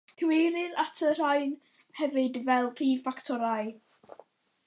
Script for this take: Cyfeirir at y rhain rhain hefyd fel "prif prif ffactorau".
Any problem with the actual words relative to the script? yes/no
yes